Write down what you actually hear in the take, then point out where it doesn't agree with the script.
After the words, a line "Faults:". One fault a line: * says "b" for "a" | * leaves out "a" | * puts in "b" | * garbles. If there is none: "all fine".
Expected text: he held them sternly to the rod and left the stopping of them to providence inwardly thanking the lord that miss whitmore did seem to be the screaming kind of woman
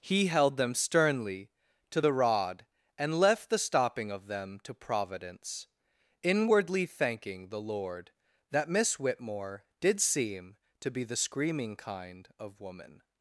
he held them sternly to the rod and left the stopping of them to providence inwardly thanking the lord that miss whitmore did seem to be the screaming kind of woman
Faults:
all fine